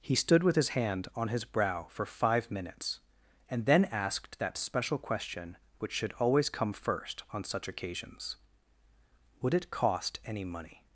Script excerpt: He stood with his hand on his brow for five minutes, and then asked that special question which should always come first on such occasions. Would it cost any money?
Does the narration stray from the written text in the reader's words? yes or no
no